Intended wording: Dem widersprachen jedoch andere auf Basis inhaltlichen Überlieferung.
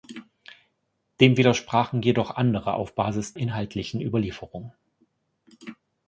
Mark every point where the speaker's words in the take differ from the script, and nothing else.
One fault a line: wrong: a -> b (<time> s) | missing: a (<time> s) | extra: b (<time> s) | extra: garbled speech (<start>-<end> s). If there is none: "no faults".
no faults